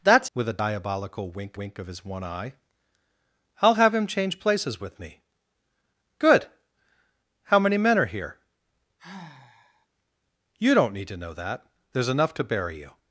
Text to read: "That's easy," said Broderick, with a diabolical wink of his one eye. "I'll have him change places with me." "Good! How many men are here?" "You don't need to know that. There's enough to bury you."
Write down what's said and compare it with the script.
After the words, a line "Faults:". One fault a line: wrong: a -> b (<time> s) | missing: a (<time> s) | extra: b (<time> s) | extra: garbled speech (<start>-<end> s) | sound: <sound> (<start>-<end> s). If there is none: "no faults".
"That's with a diabolical wink wink of his one eye. "I'll have him change places with me." "Good! How many men are here?" "You don't need to know that. There's enough to bury you."
Faults:
missing: easy said Broderick (0.3 s)
extra: wink (1.5 s)
sound: sigh (9.0-9.9 s)